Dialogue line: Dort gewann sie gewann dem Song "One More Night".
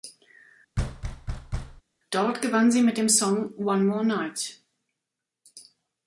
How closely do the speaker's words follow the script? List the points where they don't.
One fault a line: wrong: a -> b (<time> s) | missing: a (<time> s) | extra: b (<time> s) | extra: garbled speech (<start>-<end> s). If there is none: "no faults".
wrong: gewann -> mit (2.8 s)